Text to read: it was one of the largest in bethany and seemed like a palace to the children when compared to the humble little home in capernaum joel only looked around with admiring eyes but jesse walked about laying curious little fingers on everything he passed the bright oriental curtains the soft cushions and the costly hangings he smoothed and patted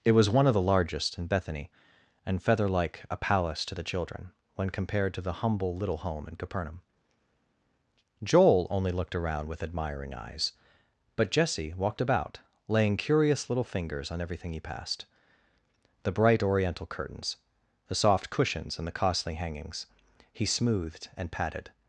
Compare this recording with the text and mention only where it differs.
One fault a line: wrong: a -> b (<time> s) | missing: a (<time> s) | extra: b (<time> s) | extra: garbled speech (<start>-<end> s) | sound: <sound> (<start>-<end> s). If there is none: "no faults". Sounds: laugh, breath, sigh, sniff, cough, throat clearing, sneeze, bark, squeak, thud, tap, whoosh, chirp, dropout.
wrong: seemed -> feather (2.4 s)